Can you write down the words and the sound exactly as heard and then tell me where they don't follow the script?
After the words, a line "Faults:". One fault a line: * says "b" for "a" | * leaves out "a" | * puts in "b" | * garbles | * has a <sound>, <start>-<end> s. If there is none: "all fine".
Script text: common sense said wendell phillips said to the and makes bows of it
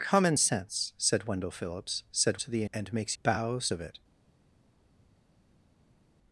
common sense said wendell phillips said to the and makes bows of it
Faults:
all fine